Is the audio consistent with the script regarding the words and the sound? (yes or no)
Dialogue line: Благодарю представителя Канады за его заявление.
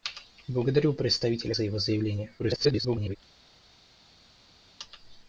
no